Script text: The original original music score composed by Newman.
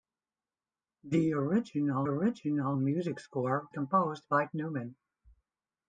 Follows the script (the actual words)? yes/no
yes